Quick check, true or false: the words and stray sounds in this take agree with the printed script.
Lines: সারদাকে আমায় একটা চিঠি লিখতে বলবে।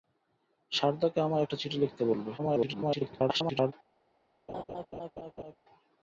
false